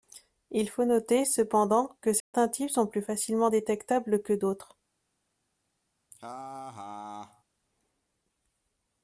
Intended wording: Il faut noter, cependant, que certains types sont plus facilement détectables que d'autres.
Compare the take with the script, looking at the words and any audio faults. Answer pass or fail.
fail